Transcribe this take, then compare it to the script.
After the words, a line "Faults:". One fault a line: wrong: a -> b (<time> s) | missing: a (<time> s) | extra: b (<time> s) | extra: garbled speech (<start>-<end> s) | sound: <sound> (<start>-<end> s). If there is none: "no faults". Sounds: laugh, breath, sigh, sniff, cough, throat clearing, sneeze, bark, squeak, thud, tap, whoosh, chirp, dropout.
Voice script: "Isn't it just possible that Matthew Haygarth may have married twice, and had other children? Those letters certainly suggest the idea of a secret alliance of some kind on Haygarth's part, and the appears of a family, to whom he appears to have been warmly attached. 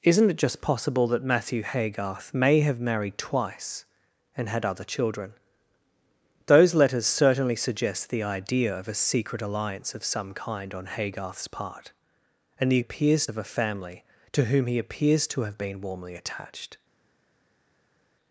"Isn't it just possible that Matthew Haygarth may have married twice, and had other children? Those letters certainly suggest the idea of a secret alliance of some kind on Haygarth's part, and the appears of a family, to whom he appears to have been warmly attached.
Faults:
no faults